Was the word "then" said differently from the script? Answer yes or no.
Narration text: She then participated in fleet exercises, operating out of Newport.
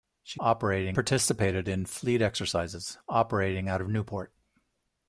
yes